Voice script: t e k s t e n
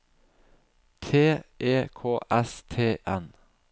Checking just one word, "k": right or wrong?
right